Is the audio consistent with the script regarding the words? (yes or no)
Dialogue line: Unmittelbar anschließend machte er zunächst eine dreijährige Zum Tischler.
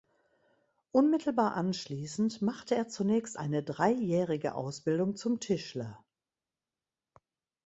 no